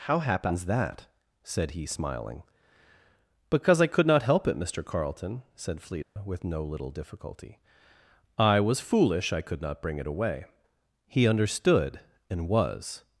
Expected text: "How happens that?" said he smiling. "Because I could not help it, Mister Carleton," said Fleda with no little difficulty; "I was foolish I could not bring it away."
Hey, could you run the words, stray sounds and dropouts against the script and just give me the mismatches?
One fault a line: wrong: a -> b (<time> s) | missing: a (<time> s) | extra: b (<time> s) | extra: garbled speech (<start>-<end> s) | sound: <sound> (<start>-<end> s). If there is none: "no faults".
sound: dropout (6.0-6.2 s)
extra: He understood and was (11.1 s)